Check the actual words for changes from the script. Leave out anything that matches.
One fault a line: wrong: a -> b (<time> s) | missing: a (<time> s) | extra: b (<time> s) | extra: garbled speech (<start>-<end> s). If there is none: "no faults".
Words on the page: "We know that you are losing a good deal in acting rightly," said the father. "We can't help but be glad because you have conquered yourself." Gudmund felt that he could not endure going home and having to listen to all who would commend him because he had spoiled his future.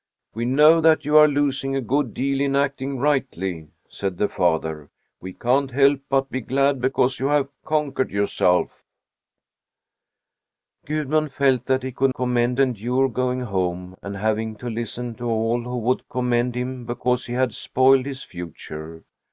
wrong: not -> commend (12.1 s)